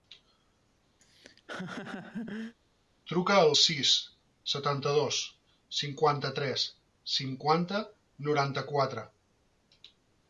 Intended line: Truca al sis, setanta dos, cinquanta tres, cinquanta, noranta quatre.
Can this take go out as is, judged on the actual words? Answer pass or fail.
pass